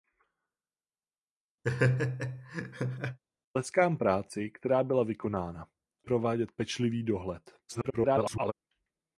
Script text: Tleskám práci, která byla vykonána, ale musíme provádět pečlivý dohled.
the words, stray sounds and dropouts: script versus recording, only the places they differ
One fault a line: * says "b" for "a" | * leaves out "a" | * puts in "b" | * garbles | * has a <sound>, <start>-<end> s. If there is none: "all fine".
* has a laugh, 1.6-3.2 s
* leaves out "ale musíme"
* garbles